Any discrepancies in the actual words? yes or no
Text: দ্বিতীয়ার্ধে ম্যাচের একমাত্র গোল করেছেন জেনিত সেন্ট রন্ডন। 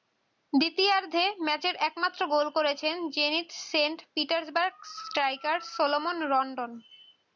yes